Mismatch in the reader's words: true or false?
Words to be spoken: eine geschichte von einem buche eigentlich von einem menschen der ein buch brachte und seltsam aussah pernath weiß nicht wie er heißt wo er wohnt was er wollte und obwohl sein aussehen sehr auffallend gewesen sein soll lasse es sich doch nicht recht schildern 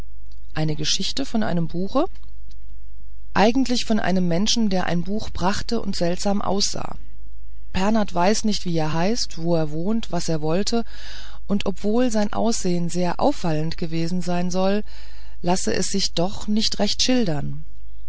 false